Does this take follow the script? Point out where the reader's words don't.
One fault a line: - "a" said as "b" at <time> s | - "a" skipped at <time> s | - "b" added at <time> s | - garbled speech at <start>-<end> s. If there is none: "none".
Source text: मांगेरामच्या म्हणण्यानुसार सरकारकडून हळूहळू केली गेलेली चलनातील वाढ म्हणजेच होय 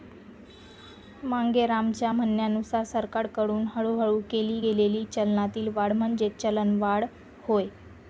- "चलनवाढ" added at 6.4 s